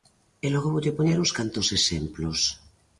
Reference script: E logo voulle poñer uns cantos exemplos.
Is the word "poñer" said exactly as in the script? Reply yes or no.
yes